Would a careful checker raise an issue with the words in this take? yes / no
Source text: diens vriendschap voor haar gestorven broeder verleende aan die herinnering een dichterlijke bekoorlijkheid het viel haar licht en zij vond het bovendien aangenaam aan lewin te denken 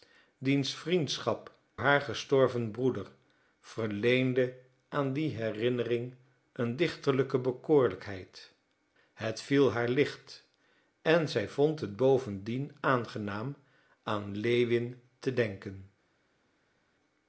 yes